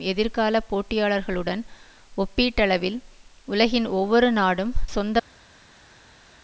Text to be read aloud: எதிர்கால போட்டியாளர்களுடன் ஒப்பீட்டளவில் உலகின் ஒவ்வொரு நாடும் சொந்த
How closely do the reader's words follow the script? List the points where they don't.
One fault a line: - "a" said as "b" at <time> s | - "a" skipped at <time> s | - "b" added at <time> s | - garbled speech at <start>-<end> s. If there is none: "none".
none